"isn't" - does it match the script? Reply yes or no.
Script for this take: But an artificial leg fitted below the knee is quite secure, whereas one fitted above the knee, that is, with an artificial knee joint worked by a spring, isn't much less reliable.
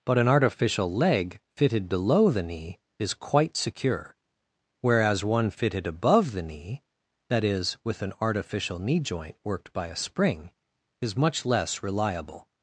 no